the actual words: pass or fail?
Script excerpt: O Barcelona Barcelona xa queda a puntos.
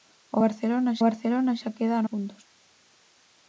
pass